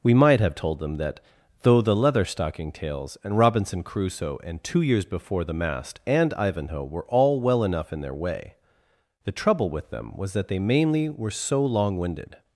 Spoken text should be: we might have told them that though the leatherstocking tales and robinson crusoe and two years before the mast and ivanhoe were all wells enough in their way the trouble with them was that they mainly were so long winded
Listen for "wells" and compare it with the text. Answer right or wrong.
wrong